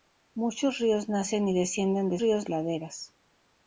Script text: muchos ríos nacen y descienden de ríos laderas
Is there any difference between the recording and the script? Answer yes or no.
no